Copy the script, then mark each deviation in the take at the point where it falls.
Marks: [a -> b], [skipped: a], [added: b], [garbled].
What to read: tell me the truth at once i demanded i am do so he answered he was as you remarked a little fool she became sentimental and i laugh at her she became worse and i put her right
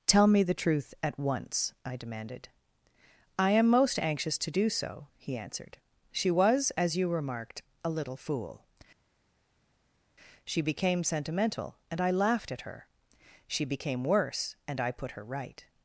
tell me the truth at once i demanded i am [added: most anxious to] do so he answered [he -> she] was as you remarked a little fool she became sentimental and i [laugh -> laughed] at her she became worse and i put her right